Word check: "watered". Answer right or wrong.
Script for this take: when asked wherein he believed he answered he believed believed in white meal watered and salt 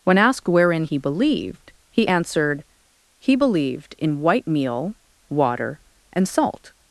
wrong